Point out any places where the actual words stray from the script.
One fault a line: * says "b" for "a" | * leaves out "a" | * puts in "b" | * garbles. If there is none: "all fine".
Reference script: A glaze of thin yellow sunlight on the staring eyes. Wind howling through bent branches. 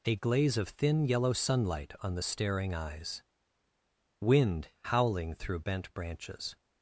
all fine